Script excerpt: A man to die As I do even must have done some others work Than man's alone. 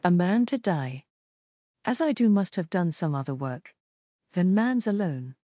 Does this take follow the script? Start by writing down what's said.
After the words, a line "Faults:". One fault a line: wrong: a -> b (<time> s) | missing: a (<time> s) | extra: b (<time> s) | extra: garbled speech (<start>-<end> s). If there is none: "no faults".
A man to die As I do must have done some other work Than man's alone.
Faults:
missing: even (2.3 s)
wrong: others -> other (3.1 s)